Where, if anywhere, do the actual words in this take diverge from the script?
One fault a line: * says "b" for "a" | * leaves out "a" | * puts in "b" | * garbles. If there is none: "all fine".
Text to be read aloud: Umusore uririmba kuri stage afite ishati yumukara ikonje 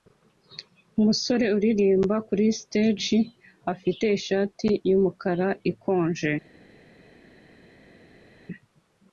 all fine